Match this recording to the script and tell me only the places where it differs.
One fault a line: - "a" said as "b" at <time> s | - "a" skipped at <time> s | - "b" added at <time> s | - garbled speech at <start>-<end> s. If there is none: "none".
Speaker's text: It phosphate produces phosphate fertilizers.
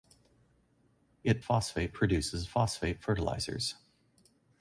none